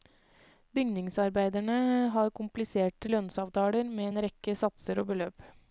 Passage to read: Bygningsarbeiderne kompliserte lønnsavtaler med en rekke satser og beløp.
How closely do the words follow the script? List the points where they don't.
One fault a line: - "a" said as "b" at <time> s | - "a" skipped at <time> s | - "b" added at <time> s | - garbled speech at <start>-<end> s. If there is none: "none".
- "har" added at 2.1 s